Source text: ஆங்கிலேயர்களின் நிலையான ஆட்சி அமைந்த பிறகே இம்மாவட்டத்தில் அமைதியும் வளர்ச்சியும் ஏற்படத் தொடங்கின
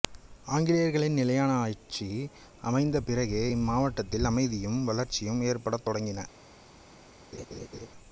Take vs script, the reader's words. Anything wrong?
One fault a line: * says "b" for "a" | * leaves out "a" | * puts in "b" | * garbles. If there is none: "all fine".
all fine